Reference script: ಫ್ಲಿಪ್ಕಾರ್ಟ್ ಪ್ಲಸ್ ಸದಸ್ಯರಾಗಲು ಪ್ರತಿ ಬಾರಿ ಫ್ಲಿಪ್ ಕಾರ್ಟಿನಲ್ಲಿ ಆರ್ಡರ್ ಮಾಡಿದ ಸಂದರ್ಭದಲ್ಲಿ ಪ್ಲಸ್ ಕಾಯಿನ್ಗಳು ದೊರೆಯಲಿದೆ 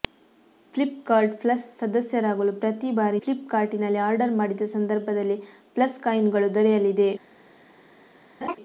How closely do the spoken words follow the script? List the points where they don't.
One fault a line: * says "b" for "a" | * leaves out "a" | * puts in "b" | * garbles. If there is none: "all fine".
all fine